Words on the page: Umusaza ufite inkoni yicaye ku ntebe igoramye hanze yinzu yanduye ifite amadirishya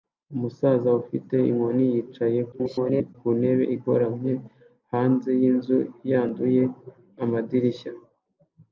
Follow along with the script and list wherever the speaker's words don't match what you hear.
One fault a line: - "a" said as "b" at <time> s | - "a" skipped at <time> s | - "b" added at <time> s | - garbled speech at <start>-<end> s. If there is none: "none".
- garbled speech at 2.5-3.1 s
- "ifite" skipped at 6.6 s